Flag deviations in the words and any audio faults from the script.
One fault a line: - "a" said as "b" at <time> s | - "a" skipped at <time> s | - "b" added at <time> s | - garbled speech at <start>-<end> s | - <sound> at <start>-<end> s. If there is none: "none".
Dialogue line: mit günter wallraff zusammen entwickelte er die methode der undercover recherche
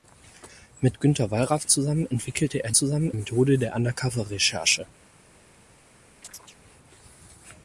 - "die" said as "zusammen" at 2.7 s
- chirp at 6.2-6.6 s